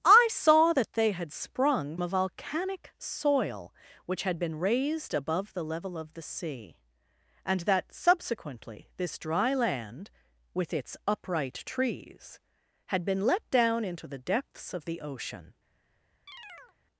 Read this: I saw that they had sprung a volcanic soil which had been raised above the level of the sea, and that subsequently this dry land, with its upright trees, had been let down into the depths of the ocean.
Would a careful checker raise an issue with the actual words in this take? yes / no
no